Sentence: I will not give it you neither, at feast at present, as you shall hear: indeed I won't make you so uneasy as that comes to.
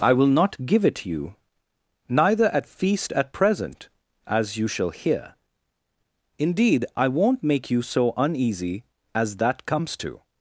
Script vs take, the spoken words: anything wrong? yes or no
no